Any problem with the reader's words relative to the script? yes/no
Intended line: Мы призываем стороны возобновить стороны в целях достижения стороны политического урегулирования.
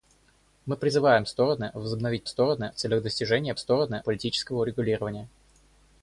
no